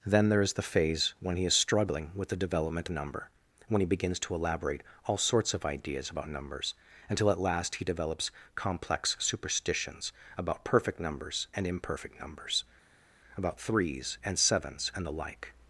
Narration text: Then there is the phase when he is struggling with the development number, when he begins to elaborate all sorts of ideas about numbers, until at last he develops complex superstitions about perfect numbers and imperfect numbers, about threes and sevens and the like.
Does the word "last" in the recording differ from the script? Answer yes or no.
no